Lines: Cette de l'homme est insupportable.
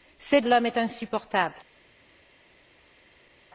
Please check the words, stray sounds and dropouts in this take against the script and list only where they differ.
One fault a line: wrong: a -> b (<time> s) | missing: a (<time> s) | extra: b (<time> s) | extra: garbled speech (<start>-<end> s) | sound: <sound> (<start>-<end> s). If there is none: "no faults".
no faults